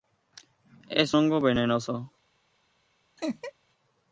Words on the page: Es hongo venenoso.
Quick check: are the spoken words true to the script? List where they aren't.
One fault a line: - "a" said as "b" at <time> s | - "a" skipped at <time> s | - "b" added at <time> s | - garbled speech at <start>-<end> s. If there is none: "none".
none